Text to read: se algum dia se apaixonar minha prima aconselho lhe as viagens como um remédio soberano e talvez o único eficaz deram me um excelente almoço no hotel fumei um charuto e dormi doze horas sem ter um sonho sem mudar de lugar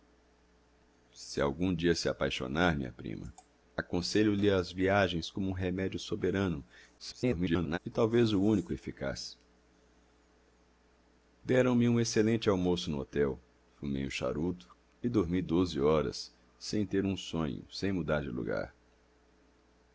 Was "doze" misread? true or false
false